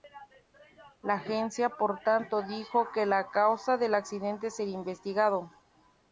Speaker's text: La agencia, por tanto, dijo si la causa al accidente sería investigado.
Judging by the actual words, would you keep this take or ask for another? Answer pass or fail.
fail